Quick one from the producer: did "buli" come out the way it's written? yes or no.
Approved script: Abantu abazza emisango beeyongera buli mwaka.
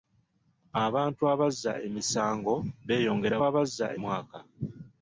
no